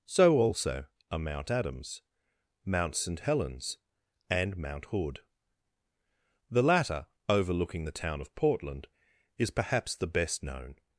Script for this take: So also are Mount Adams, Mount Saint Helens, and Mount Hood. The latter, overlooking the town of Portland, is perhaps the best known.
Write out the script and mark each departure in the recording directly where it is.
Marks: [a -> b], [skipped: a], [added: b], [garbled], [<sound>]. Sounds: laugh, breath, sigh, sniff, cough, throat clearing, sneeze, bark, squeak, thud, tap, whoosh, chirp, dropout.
So also are Mount Adams, Mount Saint Helens, and Mount Hood. The latter, overlooking the town of Portland, is perhaps the best known.